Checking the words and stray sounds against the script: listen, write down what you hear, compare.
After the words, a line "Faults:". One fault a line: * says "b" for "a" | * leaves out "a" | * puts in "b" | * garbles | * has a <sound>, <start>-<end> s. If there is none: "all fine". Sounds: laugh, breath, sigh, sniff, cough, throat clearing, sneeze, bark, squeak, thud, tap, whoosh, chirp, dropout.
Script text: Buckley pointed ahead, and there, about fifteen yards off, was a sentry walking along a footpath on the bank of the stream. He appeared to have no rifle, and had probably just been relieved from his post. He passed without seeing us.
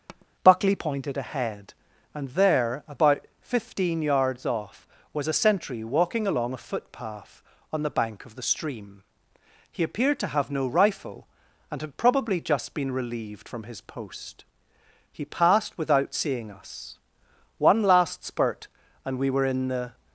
Buckley pointed ahead, and there, about fifteen yards off, was a sentry walking along a footpath on the bank of the stream. He appeared to have no rifle, and had probably just been relieved from his post. He passed without seeing us. One last spurt and we were in the
Faults:
* has a tap, 0.1-0.3 s
* puts in "One last spurt and we were in the"